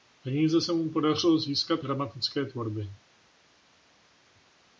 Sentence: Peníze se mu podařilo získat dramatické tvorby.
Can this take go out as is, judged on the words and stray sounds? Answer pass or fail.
pass